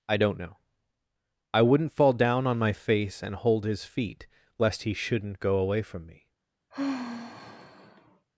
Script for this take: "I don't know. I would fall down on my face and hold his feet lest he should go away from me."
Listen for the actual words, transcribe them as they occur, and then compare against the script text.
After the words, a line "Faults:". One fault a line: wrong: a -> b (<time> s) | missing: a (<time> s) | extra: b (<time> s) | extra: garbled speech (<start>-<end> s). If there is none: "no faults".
"I don't know. I wouldn't fall down on my face and hold his feet lest he shouldn't go away from me."
Faults:
wrong: would -> wouldn't (1.6 s)
wrong: should -> shouldn't (4.9 s)